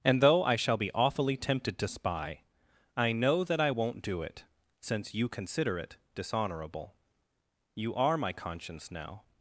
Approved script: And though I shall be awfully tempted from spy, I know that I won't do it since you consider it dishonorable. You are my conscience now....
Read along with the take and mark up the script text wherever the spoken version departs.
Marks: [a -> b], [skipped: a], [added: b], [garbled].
And though I shall be awfully tempted [from -> to] spy, I know that I won't do it since you consider it dishonorable. You are my conscience now....